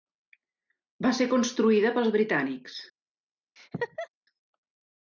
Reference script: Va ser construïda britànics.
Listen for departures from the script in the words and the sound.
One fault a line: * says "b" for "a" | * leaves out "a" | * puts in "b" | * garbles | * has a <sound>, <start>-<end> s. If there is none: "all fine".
* puts in "pels"
* has a laugh, 3.6-4.1 s